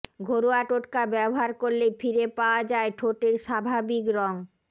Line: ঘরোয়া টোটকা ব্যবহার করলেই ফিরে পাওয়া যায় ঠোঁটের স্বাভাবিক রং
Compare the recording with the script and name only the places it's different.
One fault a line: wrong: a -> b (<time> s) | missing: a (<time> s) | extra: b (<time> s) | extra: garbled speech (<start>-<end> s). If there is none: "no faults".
no faults